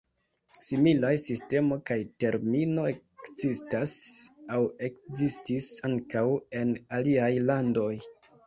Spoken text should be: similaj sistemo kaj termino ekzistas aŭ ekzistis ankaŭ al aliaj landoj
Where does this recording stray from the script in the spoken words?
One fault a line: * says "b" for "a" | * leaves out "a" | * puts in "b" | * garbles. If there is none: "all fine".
* says "en" for "al"